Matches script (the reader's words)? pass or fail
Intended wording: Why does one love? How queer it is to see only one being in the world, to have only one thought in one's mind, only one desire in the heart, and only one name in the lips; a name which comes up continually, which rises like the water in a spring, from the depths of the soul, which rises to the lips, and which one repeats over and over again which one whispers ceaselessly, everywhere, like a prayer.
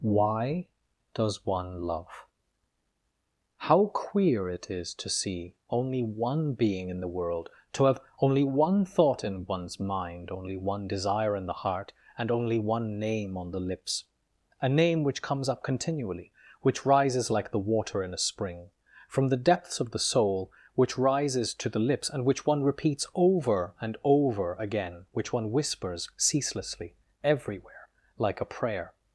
fail